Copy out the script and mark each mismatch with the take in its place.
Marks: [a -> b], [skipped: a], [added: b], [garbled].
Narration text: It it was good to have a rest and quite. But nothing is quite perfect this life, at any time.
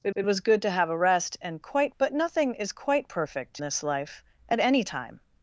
It it was good to have a rest and quite. But nothing is quite perfect this life, at any time.